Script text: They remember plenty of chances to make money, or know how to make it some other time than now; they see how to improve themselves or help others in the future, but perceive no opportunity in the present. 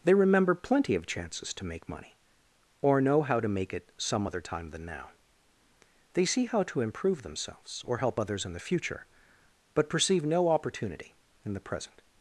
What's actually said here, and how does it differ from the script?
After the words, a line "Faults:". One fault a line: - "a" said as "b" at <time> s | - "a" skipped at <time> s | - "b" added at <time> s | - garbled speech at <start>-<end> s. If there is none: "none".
They remember plenty of chances to make money, or know how to make it some other time than now; they see how to improve themselves or help others in the future, but perceive no opportunity in the present.
Faults:
none